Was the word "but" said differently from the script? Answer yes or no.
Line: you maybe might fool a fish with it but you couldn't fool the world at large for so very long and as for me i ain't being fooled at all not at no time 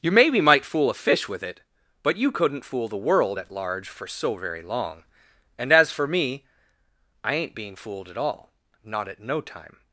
no